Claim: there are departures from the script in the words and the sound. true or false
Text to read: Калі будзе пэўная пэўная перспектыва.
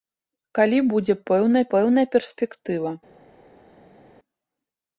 false